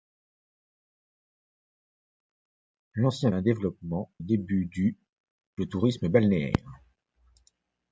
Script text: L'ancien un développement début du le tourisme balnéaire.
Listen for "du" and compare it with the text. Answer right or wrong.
right